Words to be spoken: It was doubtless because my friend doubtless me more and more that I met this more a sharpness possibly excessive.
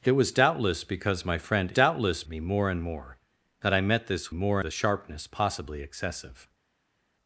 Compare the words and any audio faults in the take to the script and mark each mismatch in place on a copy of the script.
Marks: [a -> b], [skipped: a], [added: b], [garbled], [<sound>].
It was doubtless because my friend doubtless me more and more that I met this more a sharpness possibly excessive.